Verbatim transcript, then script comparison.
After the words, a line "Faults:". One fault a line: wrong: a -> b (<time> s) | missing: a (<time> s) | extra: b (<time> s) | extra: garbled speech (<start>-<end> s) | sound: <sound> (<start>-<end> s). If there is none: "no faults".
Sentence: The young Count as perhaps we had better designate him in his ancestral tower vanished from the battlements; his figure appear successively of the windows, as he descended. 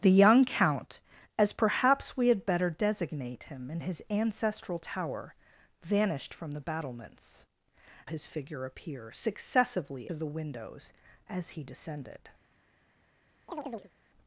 The young Count as perhaps we had better designate him in his ancestral tower vanished from the battlements; his figure appear successively of the windows, as he descended.
Faults:
sound: chirp (13.5-13.9 s)